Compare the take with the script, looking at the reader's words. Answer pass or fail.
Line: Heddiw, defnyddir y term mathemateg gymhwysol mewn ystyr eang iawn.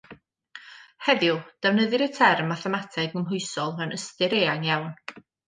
pass